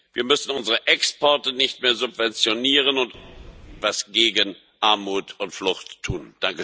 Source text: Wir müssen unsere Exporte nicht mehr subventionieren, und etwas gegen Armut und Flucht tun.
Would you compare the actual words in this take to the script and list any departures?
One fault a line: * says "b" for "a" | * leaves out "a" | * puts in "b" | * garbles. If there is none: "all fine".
all fine